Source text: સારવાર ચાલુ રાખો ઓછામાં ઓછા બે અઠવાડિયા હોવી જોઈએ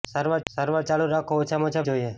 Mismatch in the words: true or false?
true